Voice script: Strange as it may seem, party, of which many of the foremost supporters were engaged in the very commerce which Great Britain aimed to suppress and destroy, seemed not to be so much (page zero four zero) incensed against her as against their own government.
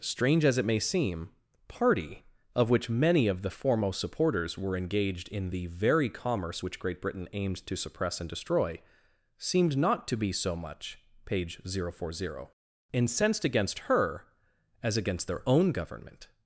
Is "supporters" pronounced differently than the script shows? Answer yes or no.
no